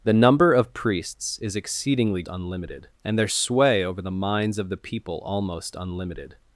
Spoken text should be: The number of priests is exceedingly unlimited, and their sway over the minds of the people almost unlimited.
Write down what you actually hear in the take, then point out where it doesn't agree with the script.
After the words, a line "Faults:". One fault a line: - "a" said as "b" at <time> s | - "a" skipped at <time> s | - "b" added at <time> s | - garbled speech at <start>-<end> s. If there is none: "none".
The number of priests is exceedingly unlimited, and their sway over the minds of the people almost unlimited.
Faults:
none